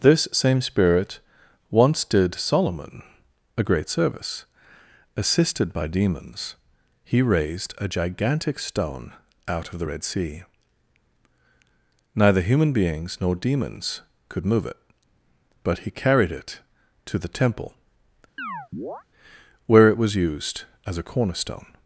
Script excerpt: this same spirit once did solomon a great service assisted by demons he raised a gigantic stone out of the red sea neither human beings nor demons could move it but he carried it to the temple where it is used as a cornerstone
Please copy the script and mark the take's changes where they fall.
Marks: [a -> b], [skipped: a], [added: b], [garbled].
this same spirit once did solomon a great service assisted by demons he raised a gigantic stone out of the red sea neither human beings nor demons could move it but he carried it to the temple where it [is -> was] used as a cornerstone